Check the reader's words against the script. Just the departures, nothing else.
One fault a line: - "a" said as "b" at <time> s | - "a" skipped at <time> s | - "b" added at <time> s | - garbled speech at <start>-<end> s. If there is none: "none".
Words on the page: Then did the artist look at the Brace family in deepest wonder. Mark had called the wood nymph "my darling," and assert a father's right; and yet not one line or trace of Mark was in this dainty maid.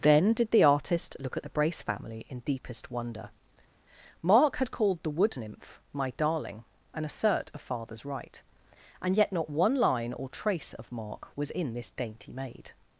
none